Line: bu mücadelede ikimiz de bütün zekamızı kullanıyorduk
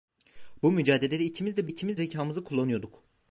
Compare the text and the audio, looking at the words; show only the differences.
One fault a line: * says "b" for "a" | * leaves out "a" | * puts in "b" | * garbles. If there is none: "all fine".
* says "ikimiz" for "bütün"